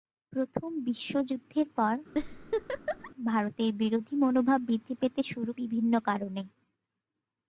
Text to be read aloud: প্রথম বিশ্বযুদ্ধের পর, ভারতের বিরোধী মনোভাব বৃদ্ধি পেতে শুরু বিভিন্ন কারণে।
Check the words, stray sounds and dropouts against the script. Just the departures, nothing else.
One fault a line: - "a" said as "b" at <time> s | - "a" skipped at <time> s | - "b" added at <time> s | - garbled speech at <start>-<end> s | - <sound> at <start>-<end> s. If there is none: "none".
- laugh at 2.1-3.1 s